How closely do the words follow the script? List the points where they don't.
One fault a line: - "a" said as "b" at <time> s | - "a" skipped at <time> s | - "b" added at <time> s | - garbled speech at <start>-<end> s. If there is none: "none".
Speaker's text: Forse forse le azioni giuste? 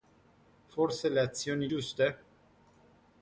- "forse" skipped at 1.1 s